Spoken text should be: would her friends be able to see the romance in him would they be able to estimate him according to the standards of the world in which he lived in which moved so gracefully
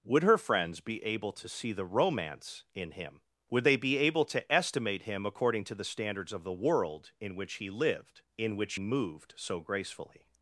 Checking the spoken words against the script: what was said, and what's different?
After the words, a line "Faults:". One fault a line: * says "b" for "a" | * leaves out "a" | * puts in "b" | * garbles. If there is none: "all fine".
would her friends be able to see the romance in him would they be able to estimate him according to the standards of the world in which he lived in which moved so gracefully
Faults:
all fine